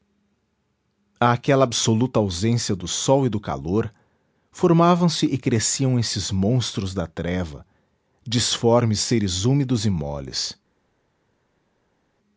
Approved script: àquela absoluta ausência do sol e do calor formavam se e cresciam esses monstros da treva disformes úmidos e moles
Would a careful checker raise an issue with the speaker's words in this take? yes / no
yes